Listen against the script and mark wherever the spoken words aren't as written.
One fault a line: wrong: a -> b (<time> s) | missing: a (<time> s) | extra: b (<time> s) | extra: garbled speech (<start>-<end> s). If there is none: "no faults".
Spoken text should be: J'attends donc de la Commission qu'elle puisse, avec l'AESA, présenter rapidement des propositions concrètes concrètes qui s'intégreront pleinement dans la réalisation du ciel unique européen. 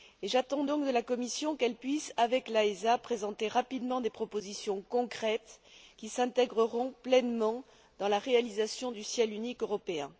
missing: concrètes (5.6 s)